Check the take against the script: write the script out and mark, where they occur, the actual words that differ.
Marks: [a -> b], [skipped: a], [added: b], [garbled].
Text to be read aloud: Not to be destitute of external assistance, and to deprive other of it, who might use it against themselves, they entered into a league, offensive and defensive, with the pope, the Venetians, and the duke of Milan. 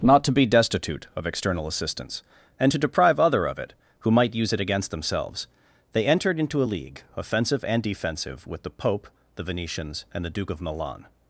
Not to be destitute of external assistance, and to deprive other of it, who might use it against themselves, they entered into a league, offensive and defensive, with the pope, the Venetians, and the duke of Milan.